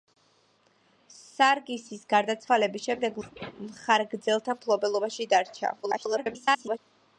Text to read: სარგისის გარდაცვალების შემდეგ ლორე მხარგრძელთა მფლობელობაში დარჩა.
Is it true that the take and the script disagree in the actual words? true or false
true